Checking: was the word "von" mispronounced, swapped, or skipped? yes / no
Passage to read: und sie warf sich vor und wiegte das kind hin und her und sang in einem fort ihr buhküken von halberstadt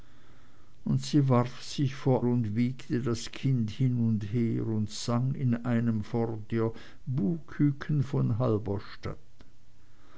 no